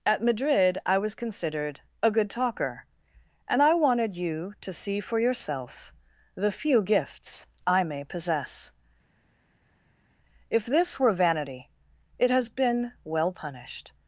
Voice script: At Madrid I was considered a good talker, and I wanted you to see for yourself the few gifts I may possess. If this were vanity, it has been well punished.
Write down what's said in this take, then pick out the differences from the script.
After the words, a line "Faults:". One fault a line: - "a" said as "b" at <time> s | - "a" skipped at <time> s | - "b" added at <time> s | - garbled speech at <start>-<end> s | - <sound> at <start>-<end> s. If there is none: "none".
At Madrid I was considered a good talker, and I wanted you to see for yourself the few gifts I may possess. If this were vanity, it has been well punished.
Faults:
none